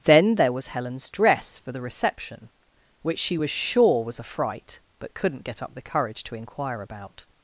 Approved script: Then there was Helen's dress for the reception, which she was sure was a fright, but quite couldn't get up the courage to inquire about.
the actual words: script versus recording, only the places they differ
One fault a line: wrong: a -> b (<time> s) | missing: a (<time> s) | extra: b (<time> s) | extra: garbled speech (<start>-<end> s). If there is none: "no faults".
missing: quite (5.1 s)